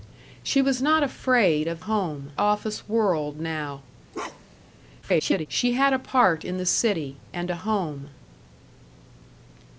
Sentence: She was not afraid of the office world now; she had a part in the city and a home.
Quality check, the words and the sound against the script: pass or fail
fail